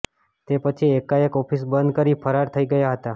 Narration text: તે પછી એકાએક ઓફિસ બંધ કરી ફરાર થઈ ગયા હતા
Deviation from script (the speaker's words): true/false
false